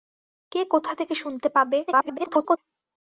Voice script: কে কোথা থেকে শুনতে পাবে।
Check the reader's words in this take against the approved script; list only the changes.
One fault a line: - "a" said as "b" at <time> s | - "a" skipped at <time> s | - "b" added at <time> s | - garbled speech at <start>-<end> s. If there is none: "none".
- garbled speech at 1.9-2.6 s